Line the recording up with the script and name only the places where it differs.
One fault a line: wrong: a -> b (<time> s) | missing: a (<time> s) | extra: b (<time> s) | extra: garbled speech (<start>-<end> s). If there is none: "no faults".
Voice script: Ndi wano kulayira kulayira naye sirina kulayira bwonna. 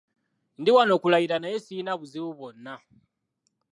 missing: kulayira (1.4 s)
wrong: kulayira -> buzibu (2.0 s)